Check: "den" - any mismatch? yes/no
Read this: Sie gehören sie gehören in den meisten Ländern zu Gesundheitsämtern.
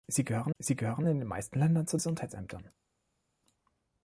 no